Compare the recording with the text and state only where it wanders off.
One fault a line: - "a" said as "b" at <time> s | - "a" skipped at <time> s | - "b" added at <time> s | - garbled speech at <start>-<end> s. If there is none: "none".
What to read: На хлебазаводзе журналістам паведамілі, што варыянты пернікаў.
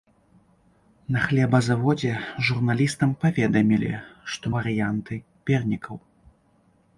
none